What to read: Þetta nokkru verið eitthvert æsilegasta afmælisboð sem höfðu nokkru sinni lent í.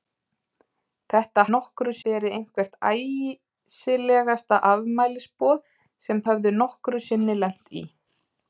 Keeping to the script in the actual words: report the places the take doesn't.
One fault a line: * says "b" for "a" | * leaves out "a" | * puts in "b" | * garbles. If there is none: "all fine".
all fine